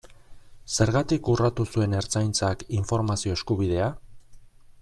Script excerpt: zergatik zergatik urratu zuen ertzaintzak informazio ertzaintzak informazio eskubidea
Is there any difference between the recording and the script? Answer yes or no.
yes